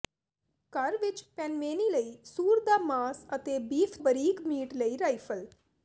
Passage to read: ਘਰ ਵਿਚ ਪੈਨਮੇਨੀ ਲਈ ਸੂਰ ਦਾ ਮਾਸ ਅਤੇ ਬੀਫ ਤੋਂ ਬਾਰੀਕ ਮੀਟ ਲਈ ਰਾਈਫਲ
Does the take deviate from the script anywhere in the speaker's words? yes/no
yes